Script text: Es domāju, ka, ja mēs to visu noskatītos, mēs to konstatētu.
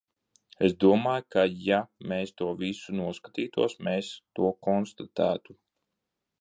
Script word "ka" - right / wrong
right